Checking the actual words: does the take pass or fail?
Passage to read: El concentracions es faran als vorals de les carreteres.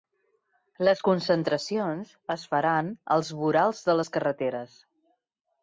fail